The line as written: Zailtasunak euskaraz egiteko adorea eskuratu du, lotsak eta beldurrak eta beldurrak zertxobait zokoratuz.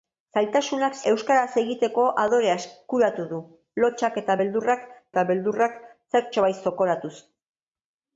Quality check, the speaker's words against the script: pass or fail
pass